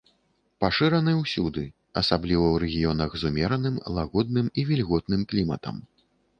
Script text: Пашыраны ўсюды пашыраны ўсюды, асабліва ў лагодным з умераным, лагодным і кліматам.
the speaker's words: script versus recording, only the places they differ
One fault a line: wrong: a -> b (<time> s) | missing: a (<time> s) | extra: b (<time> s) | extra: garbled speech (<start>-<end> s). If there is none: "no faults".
missing: пашыраны ўсюды (1.6 s)
wrong: лагодным -> рэгіёнах (2.6 s)
extra: вільготным (4.7 s)